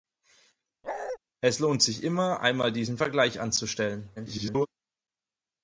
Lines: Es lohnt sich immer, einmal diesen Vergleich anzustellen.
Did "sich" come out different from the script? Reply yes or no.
no